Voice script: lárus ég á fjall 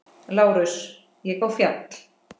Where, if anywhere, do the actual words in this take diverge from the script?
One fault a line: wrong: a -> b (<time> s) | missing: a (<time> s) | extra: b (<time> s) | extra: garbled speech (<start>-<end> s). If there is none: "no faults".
no faults